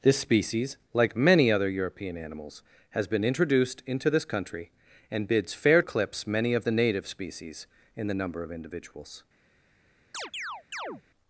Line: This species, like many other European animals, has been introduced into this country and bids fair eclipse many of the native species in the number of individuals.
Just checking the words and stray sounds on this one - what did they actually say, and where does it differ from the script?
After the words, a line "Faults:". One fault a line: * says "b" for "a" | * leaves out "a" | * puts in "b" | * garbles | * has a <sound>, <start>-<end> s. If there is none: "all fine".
This species, like many other European animals, has been introduced into this country and bids fair eclipse many of the native species in the number of individuals.
Faults:
* has a chirp, 10.1-11.0 s